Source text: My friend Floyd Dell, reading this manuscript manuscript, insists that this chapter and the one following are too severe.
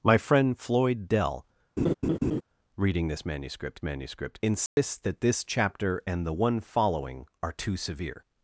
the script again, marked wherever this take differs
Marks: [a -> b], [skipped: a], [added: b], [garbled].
My friend Floyd Dell, reading this manuscript manuscript, insists that this chapter and the one following are too severe.